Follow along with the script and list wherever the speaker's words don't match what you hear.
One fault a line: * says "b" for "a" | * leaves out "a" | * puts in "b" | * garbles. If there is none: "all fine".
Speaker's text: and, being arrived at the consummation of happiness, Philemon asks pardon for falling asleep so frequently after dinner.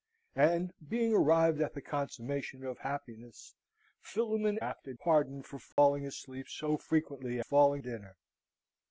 * says "after" for "asks"
* says "falling" for "after"